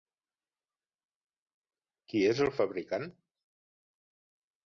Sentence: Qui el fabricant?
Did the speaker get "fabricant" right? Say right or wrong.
right